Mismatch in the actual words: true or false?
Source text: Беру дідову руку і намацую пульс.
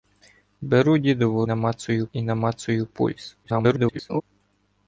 true